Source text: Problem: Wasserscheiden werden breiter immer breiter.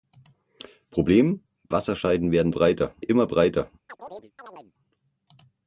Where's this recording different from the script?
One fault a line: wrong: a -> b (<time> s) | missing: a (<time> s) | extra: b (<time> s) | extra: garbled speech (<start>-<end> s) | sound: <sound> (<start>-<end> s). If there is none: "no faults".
sound: chirp (3.9-4.7 s)